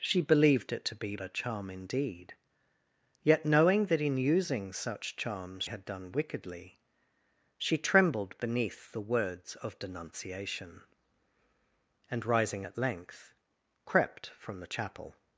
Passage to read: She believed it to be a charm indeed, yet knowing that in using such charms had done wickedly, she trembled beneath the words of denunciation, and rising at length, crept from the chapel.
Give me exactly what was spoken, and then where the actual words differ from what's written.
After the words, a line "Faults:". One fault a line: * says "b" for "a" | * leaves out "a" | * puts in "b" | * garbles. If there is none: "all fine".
She believed it to be a charm indeed, yet knowing that in using such charms had done wickedly, she trembled beneath the words of denunciation, and rising at length, crept from the chapel.
Faults:
all fine